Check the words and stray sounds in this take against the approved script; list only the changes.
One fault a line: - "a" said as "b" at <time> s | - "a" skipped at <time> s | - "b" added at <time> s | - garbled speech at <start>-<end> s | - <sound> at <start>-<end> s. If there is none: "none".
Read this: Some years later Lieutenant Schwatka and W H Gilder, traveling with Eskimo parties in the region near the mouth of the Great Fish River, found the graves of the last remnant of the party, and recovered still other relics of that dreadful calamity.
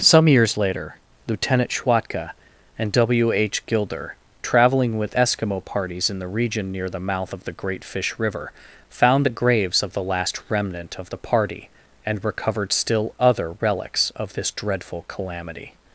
- "that" said as "this" at 14.3 s